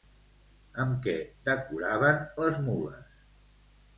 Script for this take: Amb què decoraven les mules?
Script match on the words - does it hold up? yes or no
yes